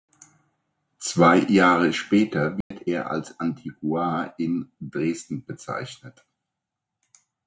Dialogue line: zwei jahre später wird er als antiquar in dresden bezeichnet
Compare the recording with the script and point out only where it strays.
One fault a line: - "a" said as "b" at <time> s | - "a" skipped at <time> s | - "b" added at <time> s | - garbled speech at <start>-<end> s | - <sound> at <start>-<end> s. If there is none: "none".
- dropout at 2.6-2.7 s